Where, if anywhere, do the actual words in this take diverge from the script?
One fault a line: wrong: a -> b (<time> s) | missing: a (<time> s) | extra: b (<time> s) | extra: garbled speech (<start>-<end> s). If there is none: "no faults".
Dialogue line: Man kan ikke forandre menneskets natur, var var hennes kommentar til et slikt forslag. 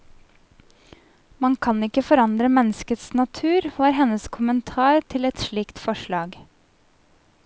missing: var (3.9 s)